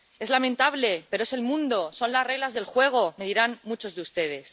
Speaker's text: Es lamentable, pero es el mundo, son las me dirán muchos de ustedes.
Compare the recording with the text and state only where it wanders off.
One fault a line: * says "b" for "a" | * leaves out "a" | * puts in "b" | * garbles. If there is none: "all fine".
* puts in "reglas del juego"